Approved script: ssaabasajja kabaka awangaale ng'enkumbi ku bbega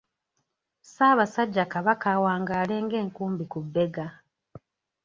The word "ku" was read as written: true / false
true